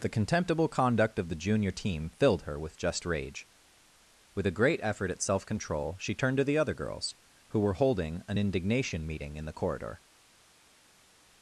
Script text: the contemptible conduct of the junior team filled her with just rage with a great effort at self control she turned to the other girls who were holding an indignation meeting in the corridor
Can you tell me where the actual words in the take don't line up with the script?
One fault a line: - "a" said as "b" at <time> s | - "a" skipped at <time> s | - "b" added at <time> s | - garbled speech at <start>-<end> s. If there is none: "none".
none